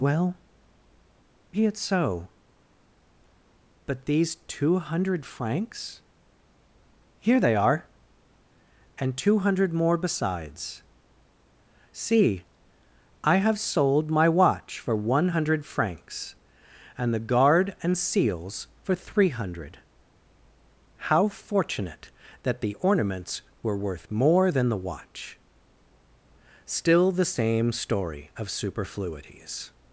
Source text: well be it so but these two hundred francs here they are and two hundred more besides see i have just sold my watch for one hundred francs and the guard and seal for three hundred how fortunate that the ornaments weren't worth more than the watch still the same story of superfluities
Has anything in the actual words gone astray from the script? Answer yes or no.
yes